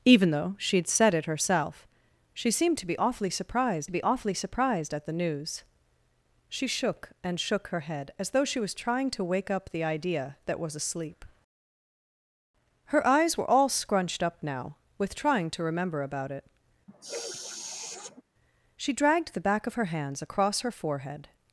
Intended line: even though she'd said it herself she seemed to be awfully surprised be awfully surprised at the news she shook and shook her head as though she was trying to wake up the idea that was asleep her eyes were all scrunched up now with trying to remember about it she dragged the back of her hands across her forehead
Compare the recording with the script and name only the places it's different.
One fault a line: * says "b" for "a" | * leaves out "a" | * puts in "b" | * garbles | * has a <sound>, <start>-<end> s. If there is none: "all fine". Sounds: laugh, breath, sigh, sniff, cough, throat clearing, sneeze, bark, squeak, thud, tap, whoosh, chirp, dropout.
* has a sniff, 16.9-18.2 s